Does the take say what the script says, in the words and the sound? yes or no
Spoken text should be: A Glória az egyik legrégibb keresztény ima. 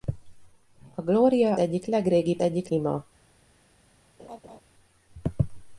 no